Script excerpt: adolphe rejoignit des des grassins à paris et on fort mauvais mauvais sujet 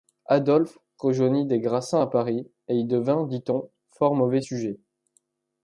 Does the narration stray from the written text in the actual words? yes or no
yes